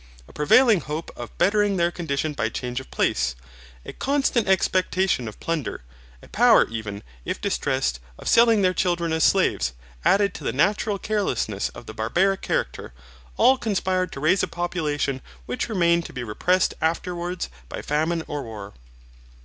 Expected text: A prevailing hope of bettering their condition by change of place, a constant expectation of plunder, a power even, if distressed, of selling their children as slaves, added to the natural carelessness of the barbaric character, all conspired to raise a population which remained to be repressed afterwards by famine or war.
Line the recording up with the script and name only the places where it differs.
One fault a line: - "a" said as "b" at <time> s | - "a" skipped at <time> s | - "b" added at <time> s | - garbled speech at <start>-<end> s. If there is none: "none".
none